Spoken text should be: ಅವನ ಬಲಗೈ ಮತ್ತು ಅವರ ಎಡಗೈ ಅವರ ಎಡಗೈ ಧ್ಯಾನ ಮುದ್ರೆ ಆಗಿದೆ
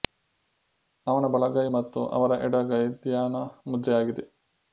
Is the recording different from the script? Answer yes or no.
yes